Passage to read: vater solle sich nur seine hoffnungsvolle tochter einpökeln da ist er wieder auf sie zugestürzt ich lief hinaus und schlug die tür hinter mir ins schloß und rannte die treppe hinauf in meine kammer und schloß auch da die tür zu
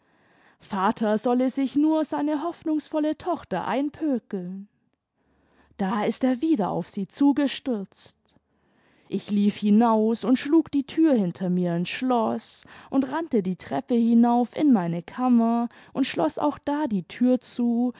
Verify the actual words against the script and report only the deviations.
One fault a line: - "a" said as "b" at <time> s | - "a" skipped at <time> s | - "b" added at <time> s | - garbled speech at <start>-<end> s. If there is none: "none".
none